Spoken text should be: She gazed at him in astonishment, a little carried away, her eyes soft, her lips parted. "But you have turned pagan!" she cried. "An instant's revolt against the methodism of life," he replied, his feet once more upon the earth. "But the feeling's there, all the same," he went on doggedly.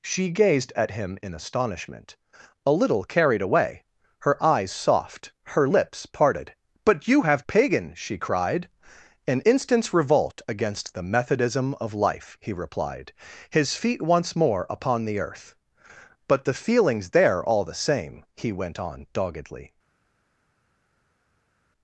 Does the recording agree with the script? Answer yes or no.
no